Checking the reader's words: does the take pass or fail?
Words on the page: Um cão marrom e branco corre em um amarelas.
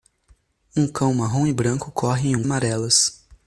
pass